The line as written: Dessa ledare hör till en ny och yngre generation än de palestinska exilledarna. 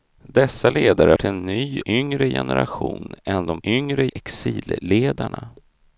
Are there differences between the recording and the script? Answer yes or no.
yes